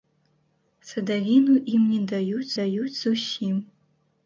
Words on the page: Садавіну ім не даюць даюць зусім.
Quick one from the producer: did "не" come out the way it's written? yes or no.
yes